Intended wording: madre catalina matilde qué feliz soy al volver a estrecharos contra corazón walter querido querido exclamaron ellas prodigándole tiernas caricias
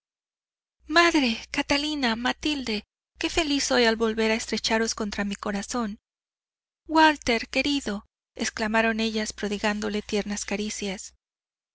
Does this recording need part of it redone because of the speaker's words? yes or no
yes